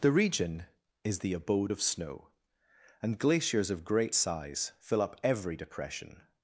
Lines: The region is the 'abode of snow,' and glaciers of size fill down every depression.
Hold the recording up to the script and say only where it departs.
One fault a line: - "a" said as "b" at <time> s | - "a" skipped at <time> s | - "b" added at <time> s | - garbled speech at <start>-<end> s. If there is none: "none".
- "great" added at 3.8 s
- "down" said as "up" at 5.0 s